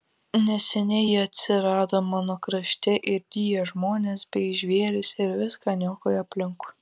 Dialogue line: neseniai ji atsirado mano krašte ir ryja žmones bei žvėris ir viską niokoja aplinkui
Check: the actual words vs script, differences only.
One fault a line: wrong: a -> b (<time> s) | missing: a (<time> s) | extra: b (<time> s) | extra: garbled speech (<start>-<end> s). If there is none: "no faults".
no faults